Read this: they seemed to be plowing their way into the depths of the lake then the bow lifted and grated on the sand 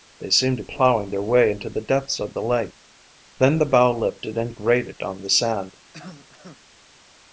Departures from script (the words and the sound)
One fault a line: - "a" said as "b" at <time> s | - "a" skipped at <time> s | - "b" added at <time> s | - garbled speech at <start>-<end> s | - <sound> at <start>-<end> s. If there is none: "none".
- "be" skipped at 0.6 s
- cough at 5.9-6.6 s